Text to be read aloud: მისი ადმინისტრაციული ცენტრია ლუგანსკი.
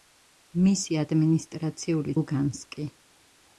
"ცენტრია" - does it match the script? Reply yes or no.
no